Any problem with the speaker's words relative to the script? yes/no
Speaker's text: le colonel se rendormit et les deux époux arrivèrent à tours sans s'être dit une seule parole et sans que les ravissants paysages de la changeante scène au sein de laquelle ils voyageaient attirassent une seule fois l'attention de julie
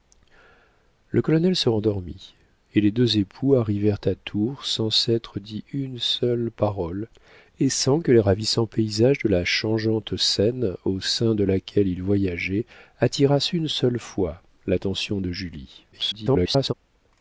yes